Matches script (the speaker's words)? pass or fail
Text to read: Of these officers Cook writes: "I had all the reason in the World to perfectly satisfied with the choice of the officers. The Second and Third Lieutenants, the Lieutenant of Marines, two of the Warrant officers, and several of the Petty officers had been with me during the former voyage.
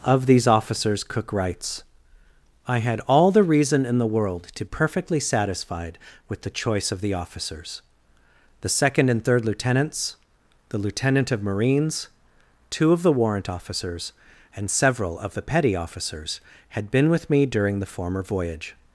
pass